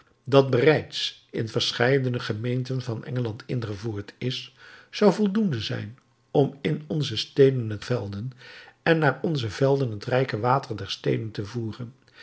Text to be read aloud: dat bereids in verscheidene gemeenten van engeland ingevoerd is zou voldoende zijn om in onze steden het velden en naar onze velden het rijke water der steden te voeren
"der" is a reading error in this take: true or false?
false